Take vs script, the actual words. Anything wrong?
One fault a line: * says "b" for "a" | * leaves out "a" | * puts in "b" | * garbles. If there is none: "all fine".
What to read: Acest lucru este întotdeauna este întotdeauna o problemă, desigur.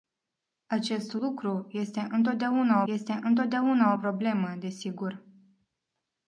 all fine